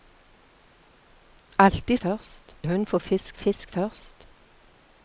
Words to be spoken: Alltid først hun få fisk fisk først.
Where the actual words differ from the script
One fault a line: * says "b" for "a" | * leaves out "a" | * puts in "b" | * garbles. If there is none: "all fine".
all fine